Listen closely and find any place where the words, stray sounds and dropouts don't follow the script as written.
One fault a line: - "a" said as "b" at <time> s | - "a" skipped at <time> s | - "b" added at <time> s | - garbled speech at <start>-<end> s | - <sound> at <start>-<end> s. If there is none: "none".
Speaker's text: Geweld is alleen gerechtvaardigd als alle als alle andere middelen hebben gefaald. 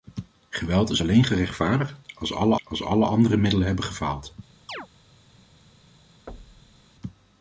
- chirp at 4.7-4.9 s
- thud at 6.3-6.8 s